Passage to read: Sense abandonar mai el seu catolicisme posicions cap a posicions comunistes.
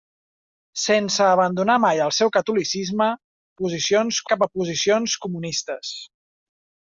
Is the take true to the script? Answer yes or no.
yes